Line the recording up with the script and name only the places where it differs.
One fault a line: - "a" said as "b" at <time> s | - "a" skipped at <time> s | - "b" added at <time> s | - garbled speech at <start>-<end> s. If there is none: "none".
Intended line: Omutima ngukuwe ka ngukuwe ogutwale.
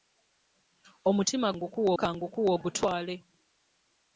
none